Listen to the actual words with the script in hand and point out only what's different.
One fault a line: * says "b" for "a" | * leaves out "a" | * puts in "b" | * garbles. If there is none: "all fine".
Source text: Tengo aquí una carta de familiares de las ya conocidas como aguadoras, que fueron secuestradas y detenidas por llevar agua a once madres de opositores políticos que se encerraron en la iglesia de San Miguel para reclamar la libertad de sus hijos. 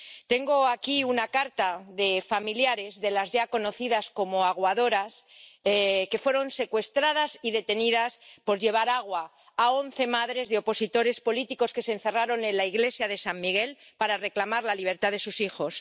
all fine